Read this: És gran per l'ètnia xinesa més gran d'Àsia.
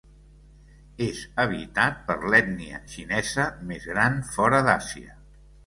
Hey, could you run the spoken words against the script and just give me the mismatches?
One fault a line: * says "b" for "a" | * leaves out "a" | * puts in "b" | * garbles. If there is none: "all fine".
* says "habitat" for "gran"
* puts in "fora"